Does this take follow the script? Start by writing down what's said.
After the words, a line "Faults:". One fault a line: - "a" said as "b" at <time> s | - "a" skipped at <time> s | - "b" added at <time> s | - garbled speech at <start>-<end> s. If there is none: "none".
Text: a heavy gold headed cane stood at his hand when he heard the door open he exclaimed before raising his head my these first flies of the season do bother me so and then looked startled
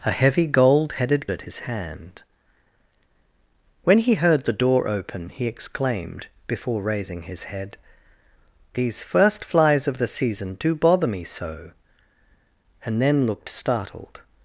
a heavy gold headed at his hand when he heard the door open he exclaimed before raising his head these first flies of the season do bother me so and then looked startled
Faults:
- "cane stood" skipped at 1.3 s
- "my" skipped at 7.8 s